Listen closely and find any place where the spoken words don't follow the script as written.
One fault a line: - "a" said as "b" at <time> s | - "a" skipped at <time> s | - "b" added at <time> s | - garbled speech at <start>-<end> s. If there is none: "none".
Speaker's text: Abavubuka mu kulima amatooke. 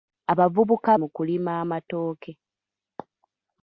none